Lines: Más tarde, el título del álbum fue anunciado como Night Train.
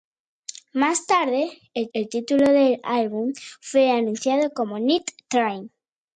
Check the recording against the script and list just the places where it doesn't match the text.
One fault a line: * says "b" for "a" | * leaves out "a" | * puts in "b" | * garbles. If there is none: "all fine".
* puts in "el"